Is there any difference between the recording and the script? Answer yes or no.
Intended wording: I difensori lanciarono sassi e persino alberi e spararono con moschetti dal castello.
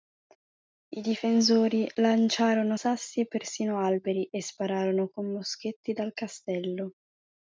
no